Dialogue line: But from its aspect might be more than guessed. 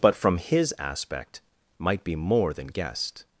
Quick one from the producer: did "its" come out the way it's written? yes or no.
no